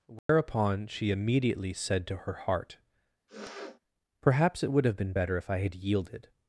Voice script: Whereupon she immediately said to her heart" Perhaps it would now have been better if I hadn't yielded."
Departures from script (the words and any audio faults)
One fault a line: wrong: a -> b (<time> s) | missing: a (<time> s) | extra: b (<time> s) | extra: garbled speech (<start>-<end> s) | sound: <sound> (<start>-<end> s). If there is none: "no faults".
sound: dropout (0.2-0.3 s)
sound: sniff (3.3-3.8 s)
missing: now (4.8 s)
wrong: hadn't -> had (5.6 s)